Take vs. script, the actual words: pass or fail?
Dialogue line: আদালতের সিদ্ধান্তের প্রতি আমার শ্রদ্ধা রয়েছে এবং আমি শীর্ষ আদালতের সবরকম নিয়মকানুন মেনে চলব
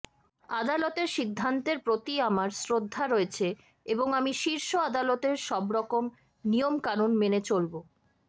pass